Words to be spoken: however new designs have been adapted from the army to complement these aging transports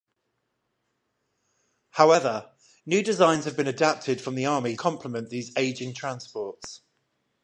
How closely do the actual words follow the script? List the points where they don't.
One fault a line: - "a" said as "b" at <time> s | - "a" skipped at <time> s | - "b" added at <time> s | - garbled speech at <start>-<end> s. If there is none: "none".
- "to" skipped at 4.8 s